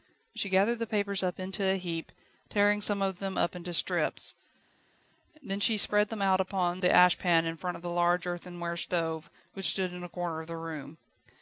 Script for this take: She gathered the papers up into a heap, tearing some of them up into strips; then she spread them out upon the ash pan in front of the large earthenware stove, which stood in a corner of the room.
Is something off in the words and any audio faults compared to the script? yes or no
no